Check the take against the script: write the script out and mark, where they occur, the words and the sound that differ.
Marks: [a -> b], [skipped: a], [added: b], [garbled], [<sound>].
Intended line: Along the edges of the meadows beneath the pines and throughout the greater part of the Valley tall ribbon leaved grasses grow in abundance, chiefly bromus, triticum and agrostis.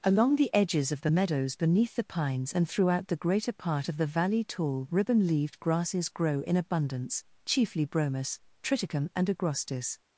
Along the edges of the meadows beneath the pines and throughout the greater part of the Valley tall ribbon leaved grasses grow in abundance, chiefly bromus, triticum and agrostis.